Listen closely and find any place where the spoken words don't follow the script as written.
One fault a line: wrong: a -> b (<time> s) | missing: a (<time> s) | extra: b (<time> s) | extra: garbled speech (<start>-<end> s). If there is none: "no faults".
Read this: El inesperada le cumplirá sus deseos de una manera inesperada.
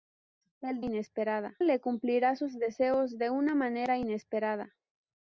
no faults